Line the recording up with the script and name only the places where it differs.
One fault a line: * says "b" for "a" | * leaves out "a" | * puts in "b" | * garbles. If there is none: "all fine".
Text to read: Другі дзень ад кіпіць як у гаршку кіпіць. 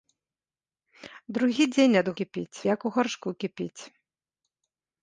all fine